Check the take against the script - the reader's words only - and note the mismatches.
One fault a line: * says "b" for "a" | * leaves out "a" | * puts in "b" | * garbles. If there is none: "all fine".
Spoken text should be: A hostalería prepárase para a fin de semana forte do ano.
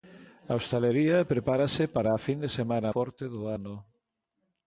all fine